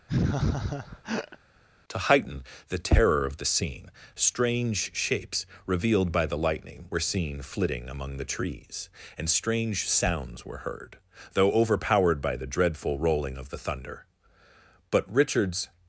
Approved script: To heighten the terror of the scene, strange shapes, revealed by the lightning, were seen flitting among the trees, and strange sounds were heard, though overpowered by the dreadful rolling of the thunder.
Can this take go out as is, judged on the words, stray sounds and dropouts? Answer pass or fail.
fail